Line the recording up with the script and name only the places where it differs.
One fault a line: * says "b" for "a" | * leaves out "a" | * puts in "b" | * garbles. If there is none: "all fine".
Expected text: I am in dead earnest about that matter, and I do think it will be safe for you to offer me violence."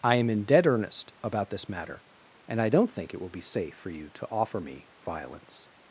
* says "this" for "that"
* says "don't" for "do"